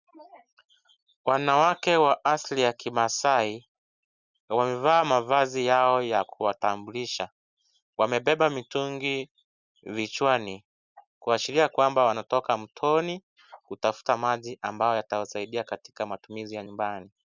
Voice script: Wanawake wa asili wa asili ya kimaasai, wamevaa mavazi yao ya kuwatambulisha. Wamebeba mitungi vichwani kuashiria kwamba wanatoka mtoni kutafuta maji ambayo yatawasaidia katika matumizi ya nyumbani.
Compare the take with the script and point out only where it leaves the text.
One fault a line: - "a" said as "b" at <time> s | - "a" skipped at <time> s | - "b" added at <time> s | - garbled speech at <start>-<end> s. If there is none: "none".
- "wa asili" skipped at 2.6 s